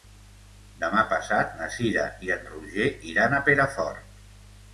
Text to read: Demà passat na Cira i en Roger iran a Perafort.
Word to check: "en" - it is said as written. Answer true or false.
true